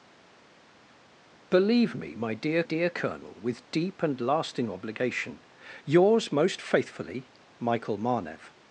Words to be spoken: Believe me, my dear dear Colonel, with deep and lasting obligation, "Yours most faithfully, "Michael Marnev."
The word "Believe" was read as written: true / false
true